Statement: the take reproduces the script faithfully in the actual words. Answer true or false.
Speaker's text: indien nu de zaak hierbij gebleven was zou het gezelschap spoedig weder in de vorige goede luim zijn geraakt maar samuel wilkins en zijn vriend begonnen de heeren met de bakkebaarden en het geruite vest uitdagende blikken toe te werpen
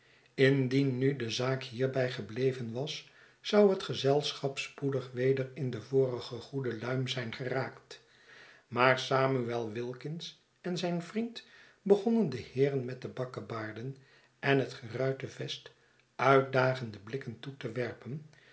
true